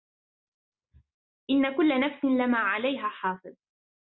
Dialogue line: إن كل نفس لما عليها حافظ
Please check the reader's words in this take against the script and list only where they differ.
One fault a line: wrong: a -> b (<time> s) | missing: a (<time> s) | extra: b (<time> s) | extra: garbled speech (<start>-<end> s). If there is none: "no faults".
no faults